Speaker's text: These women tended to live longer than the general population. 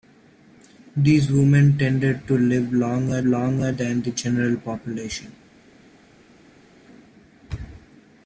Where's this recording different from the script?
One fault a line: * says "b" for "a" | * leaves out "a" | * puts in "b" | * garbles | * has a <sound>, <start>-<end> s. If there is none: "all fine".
* puts in "longer"